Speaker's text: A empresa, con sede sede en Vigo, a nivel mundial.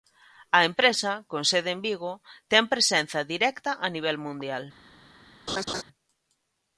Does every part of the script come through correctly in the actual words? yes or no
no